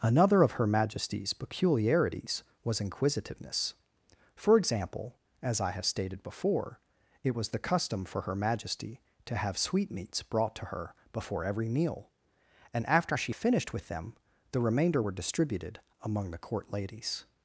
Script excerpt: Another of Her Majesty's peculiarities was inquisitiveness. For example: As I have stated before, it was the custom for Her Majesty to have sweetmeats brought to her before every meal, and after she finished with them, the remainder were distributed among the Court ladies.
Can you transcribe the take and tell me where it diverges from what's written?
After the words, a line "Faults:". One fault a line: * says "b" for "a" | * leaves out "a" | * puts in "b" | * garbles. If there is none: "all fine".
Another of Her Majesty's peculiarities was inquisitiveness. For example: As I have stated before, it was the custom for Her Majesty to have sweetmeats brought to her before every meal, and after she finished with them, the remainder were distributed among the Court ladies.
Faults:
all fine